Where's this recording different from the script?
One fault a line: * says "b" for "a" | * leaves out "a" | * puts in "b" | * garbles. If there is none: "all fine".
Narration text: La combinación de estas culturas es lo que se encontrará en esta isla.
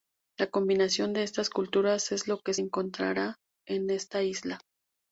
* leaves out "se"